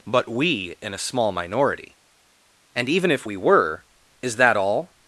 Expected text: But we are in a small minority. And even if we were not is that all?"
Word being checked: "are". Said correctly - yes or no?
no